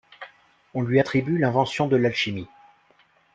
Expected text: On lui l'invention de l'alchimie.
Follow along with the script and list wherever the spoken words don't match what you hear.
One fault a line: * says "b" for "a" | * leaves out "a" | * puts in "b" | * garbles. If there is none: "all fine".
* puts in "attribue"